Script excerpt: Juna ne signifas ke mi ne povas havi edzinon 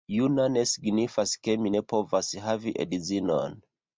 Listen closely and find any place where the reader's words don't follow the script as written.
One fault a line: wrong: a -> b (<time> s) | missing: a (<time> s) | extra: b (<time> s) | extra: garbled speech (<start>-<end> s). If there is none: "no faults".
no faults